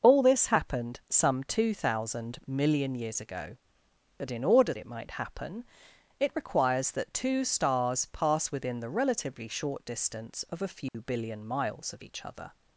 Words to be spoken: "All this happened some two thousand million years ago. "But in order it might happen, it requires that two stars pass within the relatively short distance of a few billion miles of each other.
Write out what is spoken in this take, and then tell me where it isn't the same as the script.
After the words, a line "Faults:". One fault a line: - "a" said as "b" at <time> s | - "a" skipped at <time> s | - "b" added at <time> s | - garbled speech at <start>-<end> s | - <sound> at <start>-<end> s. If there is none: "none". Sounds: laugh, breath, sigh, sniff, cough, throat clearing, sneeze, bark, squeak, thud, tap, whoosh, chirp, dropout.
"All this happened some two thousand million years ago. "But in order it might happen, it requires that two stars pass within the relatively short distance of a few billion miles of each other.
Faults:
- dropout at 10.9-10.9 s